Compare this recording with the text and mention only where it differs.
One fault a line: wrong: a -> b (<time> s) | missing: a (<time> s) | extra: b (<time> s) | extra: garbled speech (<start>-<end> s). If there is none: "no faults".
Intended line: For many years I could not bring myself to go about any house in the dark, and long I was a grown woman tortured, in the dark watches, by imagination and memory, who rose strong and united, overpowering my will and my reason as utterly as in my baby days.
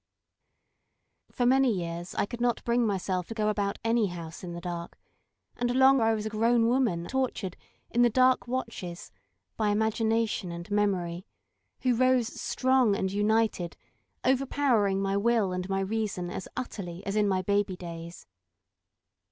no faults